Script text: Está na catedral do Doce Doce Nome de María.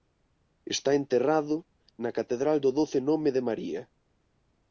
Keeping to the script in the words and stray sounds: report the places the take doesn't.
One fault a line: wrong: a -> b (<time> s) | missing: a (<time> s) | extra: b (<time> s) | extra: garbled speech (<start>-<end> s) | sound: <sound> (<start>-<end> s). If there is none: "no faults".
extra: enterrado (1.0 s)
missing: Doce (3.0 s)